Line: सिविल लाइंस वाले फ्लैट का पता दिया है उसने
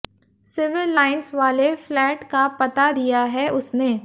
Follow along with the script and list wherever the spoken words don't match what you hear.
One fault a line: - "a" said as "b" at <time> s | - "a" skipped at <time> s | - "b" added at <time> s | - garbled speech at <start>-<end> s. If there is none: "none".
none